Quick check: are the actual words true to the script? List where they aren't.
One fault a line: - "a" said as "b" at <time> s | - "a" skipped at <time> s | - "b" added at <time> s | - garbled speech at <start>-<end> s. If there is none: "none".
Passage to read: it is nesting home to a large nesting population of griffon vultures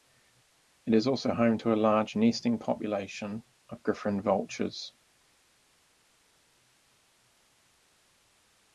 - "nesting" said as "also" at 1.1 s